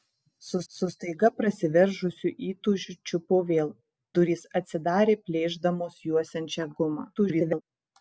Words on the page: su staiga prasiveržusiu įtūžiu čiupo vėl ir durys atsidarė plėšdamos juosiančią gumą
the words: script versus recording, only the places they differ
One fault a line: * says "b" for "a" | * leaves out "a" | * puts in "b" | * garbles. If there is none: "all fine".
* puts in "su"
* leaves out "ir"
* garbles